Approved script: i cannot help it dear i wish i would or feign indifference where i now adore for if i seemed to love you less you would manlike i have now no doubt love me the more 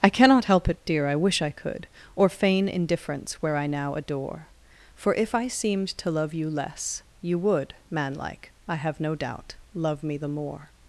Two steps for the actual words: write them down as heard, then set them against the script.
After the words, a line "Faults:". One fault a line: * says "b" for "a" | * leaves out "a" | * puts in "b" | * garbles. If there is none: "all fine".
i cannot help it dear i wish i could or feign indifference where i now adore for if i seemed to love you less you would manlike i have no doubt love me the more
Faults:
* says "could" for "would"
* leaves out "now"